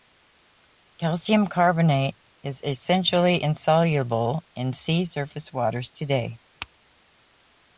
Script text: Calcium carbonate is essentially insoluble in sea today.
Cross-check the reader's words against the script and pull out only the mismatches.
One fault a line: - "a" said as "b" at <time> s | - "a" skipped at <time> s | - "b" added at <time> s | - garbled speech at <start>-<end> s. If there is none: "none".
- "surface waters" added at 5.0 s